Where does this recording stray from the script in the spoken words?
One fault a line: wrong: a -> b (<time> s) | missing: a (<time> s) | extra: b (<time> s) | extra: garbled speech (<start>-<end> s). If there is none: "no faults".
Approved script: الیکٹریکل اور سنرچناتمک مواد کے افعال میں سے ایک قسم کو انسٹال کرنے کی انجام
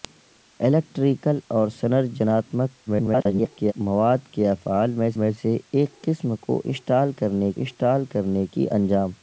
extra: garbled speech (2.9-3.7 s)
extra: میں (5.1 s)
extra: انسٹال کرنے (7.6 s)